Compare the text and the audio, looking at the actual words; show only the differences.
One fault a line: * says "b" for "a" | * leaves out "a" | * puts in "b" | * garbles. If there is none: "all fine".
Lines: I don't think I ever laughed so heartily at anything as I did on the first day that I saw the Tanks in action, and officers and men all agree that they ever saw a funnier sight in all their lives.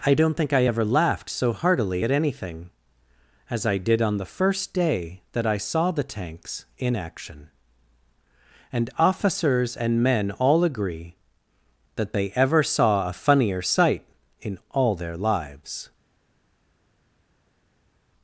all fine